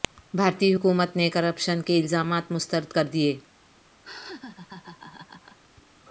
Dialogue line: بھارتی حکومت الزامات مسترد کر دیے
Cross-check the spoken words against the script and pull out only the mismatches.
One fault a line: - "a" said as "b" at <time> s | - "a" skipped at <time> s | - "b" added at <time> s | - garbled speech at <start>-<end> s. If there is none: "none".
- "نے کرپشن کے" added at 1.2 s